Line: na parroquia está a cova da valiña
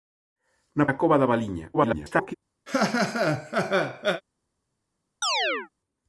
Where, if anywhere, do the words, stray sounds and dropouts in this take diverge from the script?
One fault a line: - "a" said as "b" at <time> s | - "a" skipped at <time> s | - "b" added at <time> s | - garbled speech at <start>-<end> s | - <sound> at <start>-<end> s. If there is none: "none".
- "parroquia está" skipped at 0.8 s
- garbled speech at 1.7-2.3 s
- laugh at 2.7-4.2 s
- chirp at 5.2-5.7 s